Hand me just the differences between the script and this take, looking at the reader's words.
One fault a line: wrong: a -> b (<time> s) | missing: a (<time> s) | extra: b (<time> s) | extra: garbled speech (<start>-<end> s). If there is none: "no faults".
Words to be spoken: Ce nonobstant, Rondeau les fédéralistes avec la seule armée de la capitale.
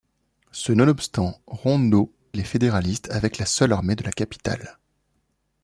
no faults